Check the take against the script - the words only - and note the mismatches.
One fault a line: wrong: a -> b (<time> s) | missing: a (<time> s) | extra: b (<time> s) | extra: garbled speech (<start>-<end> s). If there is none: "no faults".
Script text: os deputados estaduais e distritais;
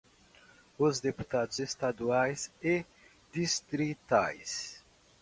no faults